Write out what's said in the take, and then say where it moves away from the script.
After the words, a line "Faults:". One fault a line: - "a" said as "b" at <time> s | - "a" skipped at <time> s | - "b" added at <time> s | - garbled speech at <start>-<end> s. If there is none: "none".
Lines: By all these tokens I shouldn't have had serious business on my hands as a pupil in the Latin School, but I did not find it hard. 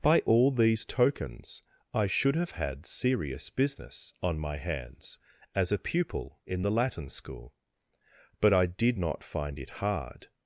By all these tokens I should have had serious business on my hands as a pupil in the Latin School, but I did not find it hard.
Faults:
- "shouldn't" said as "should" at 2.1 s